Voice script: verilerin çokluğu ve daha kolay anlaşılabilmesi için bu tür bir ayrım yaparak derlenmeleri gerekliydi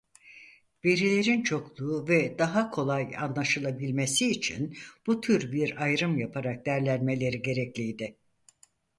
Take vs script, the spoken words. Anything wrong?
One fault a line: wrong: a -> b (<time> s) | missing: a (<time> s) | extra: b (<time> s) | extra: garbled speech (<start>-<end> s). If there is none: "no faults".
no faults